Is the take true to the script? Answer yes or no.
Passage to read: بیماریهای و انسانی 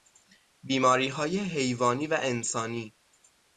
no